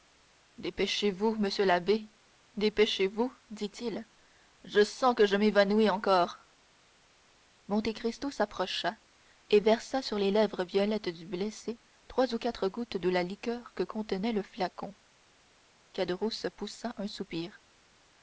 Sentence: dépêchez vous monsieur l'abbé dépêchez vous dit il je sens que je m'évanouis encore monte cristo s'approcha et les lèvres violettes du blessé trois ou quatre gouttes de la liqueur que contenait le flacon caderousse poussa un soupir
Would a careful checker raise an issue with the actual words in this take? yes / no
yes